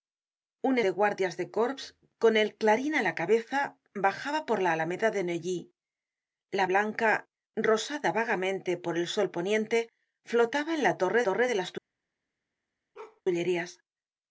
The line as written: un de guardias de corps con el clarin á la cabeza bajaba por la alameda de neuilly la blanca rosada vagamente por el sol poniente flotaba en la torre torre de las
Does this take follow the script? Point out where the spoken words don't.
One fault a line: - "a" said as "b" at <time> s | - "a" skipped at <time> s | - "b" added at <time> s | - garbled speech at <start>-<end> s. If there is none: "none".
none